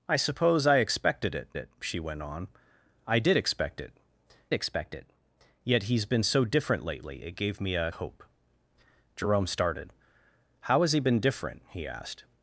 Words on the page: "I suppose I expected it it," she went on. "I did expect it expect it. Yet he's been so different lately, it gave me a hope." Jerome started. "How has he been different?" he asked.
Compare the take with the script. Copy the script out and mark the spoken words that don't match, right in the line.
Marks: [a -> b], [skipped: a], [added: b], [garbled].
"I suppose I expected it it," she went on. "I did expect it expect it. Yet he's been so different lately, it gave me a hope." Jerome started. "How has he been different?" he asked.